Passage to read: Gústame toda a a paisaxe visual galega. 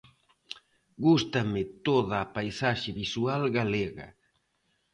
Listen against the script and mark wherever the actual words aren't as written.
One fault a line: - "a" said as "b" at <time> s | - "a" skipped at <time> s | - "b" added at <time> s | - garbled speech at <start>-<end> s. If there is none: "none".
- "a" skipped at 2.3 s